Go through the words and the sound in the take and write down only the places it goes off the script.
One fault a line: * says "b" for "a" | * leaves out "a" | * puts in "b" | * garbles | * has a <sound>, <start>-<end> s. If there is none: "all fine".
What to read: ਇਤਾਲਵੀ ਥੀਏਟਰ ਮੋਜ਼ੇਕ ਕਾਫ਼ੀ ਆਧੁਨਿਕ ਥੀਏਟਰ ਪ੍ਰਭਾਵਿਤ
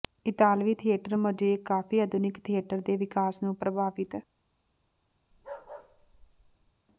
* puts in "ਦੇ ਵਿਕਾਸ ਨੂੰ"
* has a bark, 5.3-6.7 s